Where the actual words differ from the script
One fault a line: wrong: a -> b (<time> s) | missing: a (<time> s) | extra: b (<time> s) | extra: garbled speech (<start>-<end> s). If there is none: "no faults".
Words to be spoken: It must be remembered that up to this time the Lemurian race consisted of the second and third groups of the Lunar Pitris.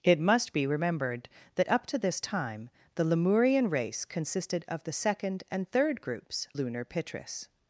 missing: of the (6.5 s)